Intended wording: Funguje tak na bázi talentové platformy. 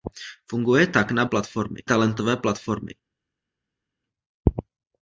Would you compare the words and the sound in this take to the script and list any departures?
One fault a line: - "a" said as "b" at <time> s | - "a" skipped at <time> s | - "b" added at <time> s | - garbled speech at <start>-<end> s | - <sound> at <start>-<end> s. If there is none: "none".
- "bázi" said as "platformy" at 1.2 s